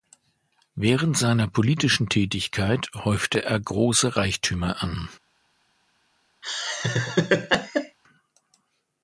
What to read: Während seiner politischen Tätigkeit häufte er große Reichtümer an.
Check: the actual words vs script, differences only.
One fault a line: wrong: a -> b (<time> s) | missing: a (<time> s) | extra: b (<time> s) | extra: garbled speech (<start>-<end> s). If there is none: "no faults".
no faults